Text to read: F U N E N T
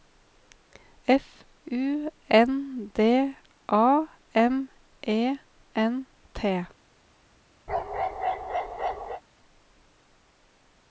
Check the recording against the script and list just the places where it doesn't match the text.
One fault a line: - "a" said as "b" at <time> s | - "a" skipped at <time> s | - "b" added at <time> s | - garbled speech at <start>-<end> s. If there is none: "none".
- "D A M" added at 2.9 s